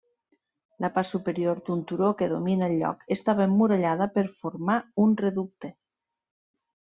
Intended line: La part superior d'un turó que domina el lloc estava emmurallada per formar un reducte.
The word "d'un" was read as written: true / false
true